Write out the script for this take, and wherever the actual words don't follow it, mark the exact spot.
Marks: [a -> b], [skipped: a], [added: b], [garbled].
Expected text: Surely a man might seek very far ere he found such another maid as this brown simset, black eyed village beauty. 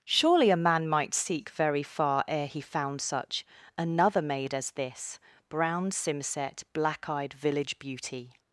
Surely a man might seek very far ere he found such another maid as this brown simset, black eyed village beauty.